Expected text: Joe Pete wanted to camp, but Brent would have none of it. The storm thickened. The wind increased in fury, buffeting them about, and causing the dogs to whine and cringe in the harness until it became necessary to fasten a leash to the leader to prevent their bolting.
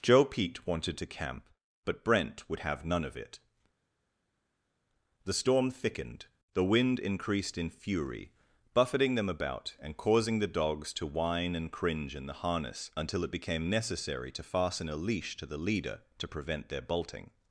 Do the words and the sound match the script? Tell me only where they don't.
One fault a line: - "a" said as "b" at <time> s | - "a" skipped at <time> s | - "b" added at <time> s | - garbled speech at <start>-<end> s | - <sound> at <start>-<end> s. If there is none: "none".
none